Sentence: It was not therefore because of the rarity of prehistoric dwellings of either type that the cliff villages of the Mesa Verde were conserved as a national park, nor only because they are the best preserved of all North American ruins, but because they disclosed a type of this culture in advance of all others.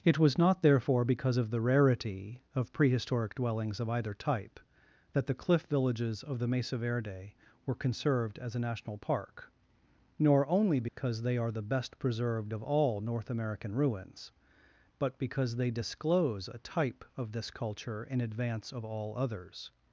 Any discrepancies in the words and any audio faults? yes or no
yes